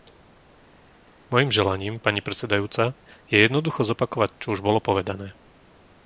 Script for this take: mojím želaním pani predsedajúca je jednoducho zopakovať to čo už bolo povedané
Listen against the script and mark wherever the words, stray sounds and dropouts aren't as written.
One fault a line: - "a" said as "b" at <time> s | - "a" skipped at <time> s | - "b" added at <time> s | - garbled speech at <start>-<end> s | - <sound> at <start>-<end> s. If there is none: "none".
- "to" skipped at 4.3 s